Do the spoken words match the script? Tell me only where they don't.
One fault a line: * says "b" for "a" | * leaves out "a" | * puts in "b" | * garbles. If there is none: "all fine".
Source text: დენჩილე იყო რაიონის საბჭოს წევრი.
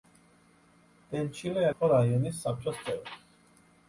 all fine